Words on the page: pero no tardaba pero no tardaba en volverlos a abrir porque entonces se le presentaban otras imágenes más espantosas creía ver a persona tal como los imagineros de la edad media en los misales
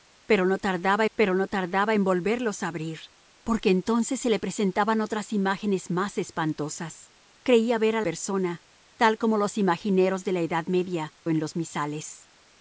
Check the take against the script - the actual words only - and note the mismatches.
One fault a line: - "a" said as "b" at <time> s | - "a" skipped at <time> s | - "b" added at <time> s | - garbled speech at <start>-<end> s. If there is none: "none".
none